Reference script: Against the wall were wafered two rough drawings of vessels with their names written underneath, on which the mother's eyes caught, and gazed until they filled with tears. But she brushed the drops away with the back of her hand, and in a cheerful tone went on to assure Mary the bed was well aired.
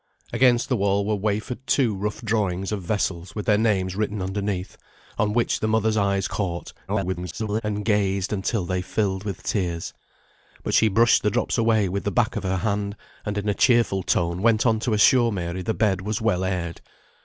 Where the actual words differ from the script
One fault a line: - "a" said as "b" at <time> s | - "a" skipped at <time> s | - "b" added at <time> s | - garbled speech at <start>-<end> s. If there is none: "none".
- garbled speech at 6.9-7.6 s